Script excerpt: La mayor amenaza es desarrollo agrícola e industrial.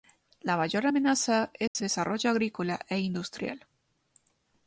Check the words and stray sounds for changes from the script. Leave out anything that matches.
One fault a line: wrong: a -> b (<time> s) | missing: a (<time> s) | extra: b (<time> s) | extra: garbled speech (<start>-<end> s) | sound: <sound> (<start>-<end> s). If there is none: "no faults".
sound: dropout (1.7-1.8 s)